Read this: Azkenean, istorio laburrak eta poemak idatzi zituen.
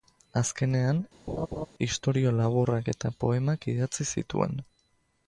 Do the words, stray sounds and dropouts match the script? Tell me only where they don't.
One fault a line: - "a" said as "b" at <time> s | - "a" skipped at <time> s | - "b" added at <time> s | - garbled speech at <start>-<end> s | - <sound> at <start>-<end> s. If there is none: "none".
- laugh at 1.3-1.7 s